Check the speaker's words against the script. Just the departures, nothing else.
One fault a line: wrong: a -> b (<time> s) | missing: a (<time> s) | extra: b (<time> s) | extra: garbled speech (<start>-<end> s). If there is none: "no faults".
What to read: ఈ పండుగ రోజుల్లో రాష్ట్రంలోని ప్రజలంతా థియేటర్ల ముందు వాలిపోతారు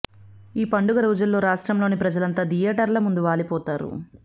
no faults